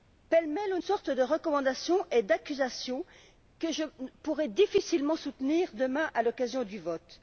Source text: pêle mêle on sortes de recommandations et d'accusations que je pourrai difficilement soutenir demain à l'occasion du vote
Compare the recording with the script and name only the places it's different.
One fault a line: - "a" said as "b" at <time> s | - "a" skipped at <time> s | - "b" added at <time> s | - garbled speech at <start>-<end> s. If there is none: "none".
none